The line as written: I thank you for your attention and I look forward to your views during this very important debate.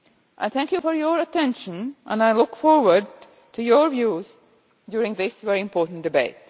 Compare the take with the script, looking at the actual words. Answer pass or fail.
pass